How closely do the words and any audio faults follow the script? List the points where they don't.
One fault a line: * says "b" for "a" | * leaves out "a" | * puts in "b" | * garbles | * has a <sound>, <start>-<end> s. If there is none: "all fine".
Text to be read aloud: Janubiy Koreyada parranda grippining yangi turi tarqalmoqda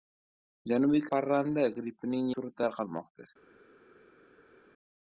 * leaves out "Koreyada"
* leaves out "yangi"